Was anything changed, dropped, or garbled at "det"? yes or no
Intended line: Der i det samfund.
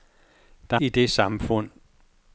no